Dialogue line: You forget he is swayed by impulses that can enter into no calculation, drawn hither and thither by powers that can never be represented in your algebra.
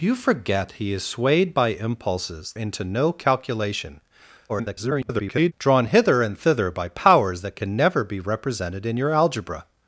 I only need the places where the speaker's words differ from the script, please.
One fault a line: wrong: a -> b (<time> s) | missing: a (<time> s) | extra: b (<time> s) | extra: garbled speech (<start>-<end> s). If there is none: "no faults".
missing: that can enter (2.5 s)
extra: garbled speech (4.5-5.5 s)